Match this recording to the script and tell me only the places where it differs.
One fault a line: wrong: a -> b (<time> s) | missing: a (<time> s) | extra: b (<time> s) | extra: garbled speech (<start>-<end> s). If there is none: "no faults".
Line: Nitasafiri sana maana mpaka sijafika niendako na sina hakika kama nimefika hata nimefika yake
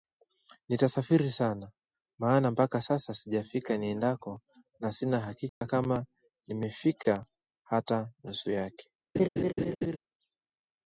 extra: sasa (2.8 s)
wrong: nimefika -> nusu (8.2 s)